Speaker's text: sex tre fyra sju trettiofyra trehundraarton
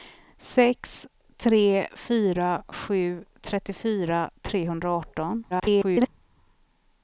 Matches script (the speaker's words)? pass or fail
fail